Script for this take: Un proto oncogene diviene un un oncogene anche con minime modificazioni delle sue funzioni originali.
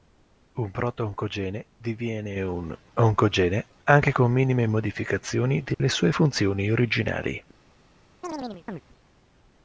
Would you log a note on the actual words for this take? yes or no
yes